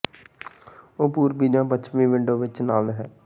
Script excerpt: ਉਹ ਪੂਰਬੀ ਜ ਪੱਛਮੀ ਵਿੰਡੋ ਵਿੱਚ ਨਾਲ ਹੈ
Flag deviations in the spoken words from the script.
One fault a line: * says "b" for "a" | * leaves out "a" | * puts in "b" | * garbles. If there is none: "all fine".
all fine